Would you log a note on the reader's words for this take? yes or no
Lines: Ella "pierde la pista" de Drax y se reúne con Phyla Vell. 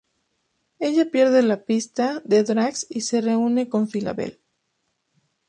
no